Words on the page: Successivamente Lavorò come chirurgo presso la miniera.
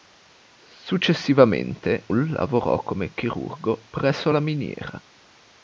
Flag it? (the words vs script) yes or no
no